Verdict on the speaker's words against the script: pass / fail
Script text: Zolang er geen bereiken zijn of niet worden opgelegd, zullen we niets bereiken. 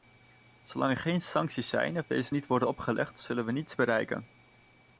fail